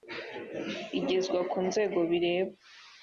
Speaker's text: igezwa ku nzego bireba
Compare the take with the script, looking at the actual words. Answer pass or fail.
pass